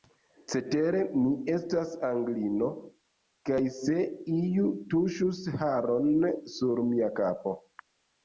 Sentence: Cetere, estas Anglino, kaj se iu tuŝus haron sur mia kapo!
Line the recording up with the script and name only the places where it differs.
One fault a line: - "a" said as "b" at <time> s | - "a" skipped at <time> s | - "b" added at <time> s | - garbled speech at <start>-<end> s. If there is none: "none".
- "mi" added at 1.2 s